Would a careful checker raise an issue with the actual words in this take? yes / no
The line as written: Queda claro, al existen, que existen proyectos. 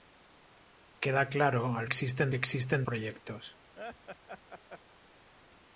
no